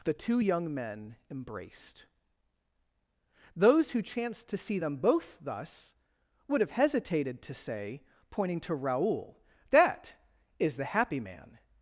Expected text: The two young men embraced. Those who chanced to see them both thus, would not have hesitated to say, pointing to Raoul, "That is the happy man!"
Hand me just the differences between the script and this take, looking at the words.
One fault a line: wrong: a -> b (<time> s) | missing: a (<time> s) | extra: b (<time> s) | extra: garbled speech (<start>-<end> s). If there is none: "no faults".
missing: not (6.6 s)